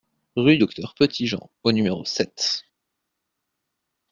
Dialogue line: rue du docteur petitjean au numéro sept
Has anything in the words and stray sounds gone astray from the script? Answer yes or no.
yes